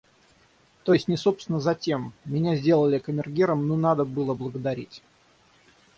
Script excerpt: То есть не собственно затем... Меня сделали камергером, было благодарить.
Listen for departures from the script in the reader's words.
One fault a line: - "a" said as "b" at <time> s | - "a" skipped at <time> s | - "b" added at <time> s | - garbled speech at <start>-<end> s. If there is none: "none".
- "ну надо" added at 3.7 s